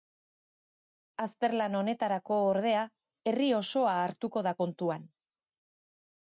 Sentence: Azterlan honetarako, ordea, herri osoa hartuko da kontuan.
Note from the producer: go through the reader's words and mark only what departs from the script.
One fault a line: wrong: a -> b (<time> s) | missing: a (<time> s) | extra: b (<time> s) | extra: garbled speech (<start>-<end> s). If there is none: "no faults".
no faults